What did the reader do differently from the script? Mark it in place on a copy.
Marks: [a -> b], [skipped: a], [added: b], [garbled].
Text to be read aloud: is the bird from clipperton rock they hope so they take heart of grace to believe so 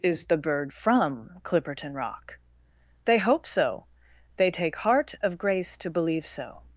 is the bird from clipperton rock they hope so they take heart of grace to believe so